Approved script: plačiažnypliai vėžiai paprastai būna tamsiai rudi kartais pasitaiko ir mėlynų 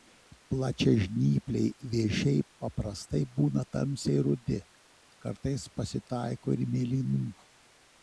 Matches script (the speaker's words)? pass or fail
pass